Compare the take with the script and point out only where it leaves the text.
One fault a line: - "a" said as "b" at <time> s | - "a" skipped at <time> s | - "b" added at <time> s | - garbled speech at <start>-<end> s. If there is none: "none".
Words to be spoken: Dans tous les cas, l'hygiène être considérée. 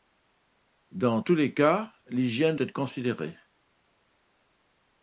none